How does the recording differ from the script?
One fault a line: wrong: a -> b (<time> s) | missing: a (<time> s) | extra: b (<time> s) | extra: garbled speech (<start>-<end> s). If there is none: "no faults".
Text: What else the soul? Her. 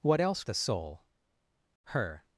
no faults